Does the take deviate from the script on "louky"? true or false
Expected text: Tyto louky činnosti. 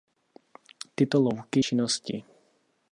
false